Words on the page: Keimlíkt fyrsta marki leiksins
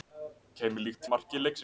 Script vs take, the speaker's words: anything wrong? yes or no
yes